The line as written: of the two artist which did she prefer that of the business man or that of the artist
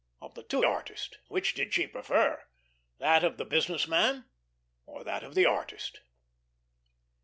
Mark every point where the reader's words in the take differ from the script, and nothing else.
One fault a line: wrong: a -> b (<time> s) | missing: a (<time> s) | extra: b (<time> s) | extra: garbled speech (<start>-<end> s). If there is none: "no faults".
no faults